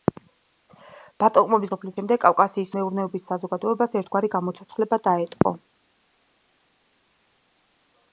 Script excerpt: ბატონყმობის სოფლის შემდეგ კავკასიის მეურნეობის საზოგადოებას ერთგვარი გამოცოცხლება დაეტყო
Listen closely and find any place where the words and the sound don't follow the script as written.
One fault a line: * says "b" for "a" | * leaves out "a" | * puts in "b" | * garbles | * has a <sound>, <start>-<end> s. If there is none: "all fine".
all fine